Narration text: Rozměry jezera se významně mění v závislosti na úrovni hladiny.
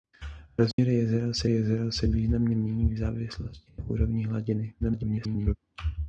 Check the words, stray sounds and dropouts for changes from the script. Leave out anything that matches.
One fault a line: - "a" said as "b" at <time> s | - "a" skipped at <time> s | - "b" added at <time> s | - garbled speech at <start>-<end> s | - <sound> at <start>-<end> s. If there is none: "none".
- dropout at 0.7-0.8 s
- "jezera se" added at 1.5 s
- garbled speech at 4.8-5.6 s